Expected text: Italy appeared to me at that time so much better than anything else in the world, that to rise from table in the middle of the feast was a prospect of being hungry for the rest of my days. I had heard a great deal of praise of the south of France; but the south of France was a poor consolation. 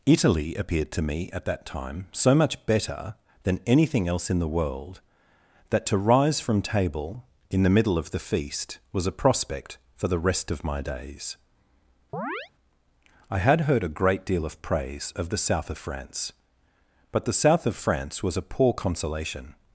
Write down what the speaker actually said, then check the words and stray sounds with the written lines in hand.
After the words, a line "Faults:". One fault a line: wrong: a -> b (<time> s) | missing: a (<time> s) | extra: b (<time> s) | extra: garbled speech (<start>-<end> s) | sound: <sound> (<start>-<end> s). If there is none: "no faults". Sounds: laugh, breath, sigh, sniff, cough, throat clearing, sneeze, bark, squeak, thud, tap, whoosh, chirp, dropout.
Italy appeared to me at that time so much better than anything else in the world, that to rise from table in the middle of the feast was a prospect for the rest of my days. I had heard a great deal of praise of the south of France; but the south of France was a poor consolation.
Faults:
missing: of being hungry (9.8 s)
sound: chirp (12.1-12.5 s)